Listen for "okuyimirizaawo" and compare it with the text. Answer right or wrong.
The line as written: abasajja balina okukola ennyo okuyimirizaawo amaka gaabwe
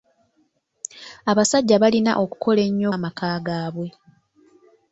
wrong